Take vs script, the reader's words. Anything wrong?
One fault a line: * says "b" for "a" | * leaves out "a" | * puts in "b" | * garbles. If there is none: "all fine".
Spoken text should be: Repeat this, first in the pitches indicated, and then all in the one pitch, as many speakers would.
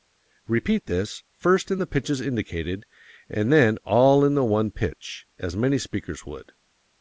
all fine